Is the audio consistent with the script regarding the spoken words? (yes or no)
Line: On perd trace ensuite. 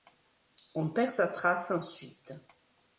no